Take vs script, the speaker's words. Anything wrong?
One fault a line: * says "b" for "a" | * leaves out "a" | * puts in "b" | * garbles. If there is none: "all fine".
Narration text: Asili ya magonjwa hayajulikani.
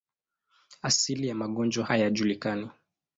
all fine